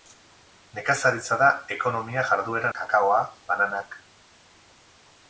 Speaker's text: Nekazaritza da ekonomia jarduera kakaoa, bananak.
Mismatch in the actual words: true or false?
false